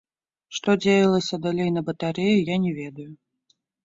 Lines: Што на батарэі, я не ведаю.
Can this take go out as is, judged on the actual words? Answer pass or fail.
fail